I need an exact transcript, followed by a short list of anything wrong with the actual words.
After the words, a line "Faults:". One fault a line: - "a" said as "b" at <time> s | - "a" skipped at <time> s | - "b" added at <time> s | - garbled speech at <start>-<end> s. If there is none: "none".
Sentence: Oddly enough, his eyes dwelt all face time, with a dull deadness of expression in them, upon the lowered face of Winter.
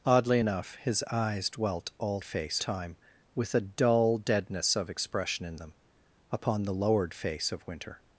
Oddly enough, his eyes dwelt all face time, with a dull deadness of expression in them, upon the lowered face of Winter.
Faults:
none